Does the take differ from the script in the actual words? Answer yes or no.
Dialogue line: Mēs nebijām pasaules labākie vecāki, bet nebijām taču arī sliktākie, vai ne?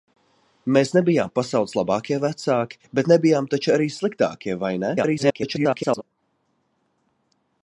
yes